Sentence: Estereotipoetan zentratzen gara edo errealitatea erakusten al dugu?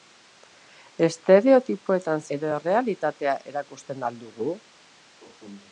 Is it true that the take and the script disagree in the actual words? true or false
true